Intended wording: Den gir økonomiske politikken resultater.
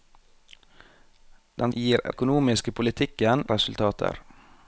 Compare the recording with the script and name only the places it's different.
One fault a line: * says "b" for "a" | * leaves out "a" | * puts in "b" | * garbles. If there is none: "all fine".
all fine